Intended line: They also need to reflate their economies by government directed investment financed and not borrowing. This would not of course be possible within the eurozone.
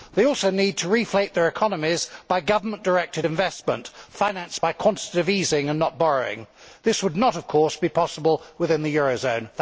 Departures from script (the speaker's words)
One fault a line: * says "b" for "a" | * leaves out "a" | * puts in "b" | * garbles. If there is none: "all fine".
* puts in "by quantitative easing"